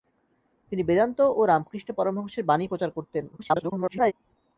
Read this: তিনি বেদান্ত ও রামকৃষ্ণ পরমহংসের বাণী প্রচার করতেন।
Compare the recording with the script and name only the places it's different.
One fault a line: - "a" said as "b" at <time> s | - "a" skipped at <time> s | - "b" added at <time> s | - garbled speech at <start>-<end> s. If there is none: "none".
- garbled speech at 3.3-4.1 s